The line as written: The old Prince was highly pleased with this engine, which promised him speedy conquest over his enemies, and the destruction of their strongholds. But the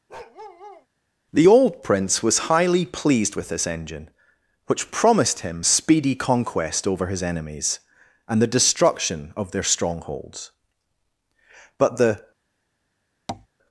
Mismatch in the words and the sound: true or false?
true